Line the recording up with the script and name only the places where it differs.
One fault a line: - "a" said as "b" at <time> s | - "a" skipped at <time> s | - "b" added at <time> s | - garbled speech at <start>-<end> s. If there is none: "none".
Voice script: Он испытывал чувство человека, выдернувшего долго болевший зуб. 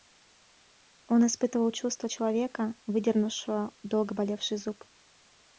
none